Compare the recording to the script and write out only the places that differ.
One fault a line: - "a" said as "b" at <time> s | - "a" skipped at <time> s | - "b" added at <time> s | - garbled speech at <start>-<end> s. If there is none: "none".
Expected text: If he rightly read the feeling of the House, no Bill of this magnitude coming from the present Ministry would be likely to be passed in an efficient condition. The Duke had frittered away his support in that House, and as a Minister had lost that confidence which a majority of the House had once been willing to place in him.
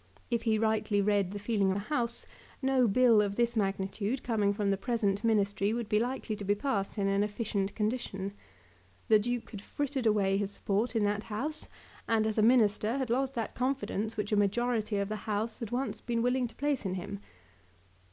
- "of" skipped at 1.7 s